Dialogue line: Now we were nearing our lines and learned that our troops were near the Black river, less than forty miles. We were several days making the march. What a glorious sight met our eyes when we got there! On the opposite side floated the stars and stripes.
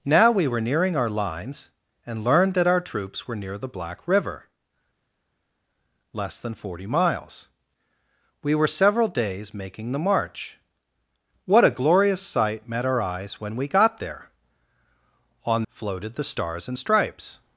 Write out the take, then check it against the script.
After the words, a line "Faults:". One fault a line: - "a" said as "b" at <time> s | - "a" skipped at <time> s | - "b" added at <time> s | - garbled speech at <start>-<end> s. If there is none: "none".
Now we were nearing our lines and learned that our troops were near the Black river, less than forty miles. We were several days making the march. What a glorious sight met our eyes when we got there! On floated the stars and stripes.
Faults:
- "the opposite side" skipped at 15.6 s